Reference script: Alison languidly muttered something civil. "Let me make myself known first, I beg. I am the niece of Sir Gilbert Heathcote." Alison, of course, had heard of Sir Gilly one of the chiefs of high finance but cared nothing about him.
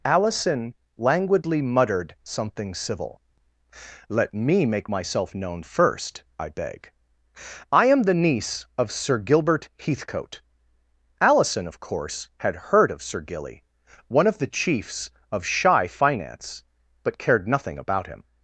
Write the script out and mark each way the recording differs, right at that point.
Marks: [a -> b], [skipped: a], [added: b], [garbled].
Alison languidly muttered something civil. "Let me make myself known first, I beg. I am the niece of Sir Gilbert Heathcote." Alison, of course, had heard of Sir Gilly one of the chiefs of [high -> shy] finance but cared nothing about him.